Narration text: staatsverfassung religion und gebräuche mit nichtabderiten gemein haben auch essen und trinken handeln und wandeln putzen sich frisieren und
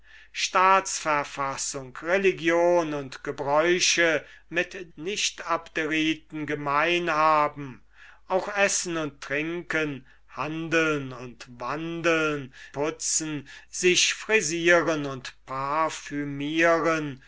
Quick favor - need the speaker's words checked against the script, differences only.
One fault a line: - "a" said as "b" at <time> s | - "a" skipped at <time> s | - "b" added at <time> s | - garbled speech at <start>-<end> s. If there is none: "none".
none